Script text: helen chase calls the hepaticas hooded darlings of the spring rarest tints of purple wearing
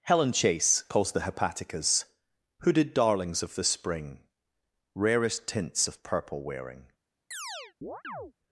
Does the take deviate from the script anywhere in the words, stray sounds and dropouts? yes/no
yes